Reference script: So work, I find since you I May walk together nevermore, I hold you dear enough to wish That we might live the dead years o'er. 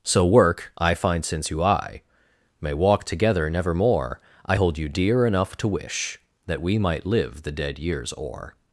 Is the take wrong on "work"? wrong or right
right